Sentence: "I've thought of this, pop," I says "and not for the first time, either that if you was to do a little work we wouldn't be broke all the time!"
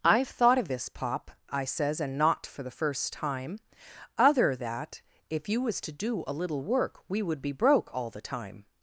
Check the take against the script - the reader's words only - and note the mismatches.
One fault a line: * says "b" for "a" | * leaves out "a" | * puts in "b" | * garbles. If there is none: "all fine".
* says "other" for "either"
* says "would" for "wouldn't"